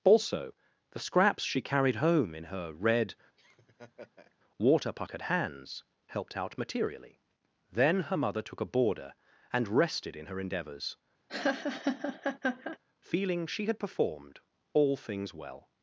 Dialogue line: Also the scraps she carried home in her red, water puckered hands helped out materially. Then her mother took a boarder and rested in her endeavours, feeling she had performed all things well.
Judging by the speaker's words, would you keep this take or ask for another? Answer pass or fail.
pass